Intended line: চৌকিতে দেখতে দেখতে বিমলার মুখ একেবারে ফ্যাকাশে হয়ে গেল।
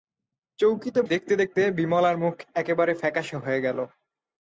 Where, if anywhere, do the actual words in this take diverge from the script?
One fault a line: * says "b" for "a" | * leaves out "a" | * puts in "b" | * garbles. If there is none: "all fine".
all fine